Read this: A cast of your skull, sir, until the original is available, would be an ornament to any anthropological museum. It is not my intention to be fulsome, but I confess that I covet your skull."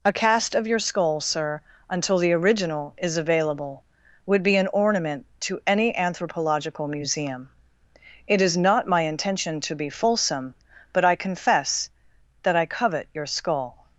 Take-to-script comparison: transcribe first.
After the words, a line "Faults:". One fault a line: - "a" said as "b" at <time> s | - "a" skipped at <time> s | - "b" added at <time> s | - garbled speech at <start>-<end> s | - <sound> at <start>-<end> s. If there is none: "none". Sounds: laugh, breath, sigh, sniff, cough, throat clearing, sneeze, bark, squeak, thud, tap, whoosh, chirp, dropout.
A cast of your skull, sir, until the original is available, would be an ornament to any anthropological museum. It is not my intention to be fulsome, but I confess that I covet your skull."
Faults:
none